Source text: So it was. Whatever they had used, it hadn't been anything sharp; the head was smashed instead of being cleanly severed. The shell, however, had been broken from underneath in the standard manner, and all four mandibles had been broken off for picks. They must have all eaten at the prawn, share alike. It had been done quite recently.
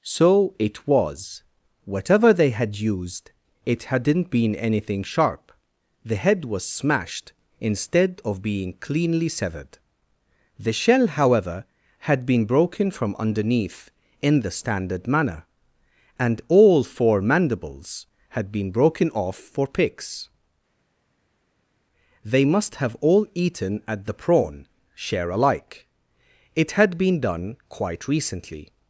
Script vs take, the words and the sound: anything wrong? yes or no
no